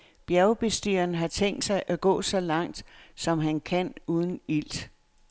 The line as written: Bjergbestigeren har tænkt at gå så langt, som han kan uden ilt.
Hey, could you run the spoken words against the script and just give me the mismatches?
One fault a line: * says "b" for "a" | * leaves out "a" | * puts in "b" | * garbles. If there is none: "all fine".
* puts in "sig"